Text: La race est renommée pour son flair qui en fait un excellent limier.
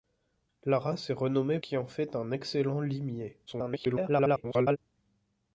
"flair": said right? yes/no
no